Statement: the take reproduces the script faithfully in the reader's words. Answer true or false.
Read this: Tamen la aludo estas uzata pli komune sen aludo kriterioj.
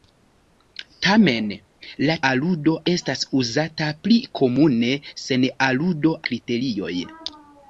true